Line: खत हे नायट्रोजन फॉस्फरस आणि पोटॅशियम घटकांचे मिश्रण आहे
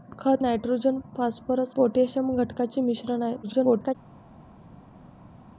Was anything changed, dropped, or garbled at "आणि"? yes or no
yes